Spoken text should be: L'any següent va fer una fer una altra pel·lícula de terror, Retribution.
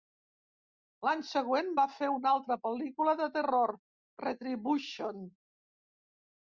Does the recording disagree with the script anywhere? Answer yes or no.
yes